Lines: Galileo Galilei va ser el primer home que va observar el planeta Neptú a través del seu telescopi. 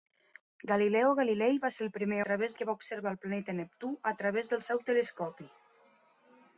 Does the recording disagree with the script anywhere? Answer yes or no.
yes